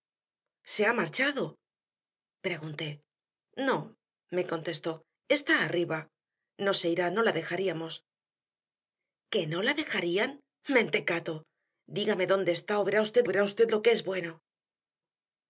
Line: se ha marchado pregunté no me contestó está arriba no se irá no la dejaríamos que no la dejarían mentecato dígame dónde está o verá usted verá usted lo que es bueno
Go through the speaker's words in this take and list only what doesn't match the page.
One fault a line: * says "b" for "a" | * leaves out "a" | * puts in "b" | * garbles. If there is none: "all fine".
all fine